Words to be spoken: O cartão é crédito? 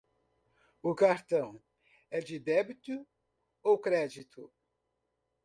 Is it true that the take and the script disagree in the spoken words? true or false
true